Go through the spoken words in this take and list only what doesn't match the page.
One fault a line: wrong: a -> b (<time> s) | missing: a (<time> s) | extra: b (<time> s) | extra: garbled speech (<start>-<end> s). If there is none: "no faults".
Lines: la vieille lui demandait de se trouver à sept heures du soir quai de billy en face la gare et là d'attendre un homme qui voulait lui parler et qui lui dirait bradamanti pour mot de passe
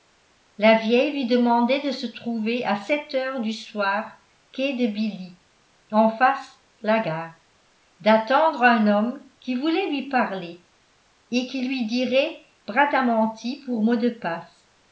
missing: et là (7.3 s)